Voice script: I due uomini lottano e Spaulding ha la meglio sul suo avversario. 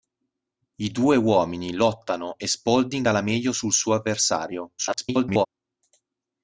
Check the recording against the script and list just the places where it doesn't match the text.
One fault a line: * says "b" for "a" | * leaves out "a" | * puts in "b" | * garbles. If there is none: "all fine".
* garbles